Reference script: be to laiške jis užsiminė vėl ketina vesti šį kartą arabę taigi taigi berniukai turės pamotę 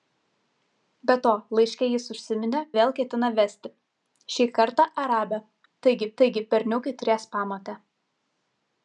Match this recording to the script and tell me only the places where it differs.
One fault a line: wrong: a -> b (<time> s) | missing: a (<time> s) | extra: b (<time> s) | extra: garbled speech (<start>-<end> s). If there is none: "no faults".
no faults